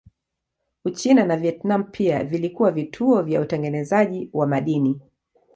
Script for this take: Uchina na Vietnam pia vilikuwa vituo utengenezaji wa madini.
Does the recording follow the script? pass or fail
fail